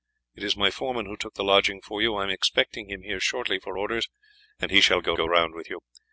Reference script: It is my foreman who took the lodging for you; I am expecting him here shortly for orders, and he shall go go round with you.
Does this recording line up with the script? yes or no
yes